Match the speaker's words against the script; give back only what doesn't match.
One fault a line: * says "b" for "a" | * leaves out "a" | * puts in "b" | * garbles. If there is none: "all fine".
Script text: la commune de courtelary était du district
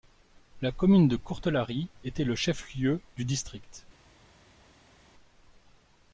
* puts in "le chef lieu"